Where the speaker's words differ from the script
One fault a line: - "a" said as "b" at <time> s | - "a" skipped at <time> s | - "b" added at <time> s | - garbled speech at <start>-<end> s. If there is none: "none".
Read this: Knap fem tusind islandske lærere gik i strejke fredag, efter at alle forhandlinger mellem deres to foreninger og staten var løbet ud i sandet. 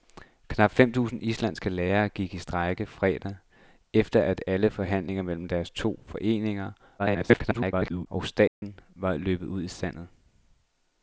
- garbled speech at 7.0-8.1 s